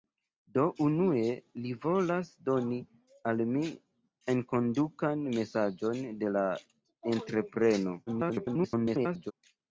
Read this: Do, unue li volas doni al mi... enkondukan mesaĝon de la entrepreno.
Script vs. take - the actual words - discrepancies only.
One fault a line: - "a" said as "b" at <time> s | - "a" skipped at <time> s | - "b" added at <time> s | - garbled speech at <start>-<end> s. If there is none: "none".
- garbled speech at 8.1-9.3 s